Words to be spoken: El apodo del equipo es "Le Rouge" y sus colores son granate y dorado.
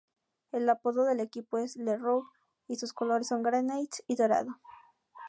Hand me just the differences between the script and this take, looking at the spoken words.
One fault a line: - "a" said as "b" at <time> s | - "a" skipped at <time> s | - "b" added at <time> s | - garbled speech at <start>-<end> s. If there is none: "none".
none